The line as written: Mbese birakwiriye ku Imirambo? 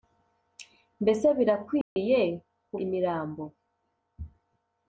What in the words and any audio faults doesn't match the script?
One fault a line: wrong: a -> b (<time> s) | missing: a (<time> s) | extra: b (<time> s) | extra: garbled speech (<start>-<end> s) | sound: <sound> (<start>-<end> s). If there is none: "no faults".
sound: dropout (1.8-2.0 s)